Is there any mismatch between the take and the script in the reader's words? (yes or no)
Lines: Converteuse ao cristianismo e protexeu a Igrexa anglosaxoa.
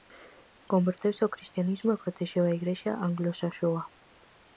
no